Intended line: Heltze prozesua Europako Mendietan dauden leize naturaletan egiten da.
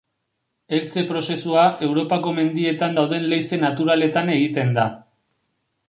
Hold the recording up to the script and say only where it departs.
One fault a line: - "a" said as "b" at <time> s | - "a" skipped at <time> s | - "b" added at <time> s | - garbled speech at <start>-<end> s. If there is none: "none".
none